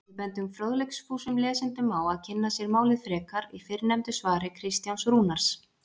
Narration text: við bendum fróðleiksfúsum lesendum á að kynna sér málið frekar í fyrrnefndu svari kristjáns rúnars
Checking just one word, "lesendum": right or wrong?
right